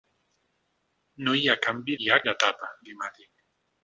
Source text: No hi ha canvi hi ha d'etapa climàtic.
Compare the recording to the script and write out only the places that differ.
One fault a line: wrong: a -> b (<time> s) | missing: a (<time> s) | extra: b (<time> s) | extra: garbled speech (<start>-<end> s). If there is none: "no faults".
no faults